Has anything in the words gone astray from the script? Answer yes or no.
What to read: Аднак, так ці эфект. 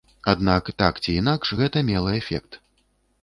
yes